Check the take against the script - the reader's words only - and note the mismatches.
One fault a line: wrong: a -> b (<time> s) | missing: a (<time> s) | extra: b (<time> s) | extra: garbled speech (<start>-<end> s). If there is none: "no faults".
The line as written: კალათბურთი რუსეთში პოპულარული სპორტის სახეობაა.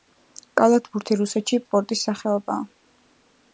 missing: პოპულარული (1.6 s)